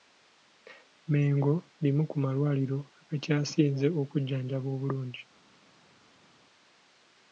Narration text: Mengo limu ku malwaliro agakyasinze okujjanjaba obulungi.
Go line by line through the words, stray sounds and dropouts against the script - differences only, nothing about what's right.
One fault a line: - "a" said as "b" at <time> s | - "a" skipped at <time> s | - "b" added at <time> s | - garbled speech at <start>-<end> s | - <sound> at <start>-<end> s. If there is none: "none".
none